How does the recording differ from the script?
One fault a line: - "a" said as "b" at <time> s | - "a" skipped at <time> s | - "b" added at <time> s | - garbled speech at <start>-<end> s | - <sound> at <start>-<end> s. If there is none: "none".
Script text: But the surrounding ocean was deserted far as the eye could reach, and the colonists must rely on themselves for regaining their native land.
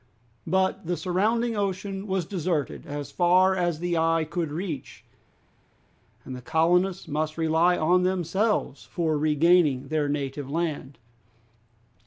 - "as" added at 2.9 s